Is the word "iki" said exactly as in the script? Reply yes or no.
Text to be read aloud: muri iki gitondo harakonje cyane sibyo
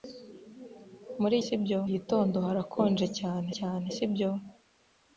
no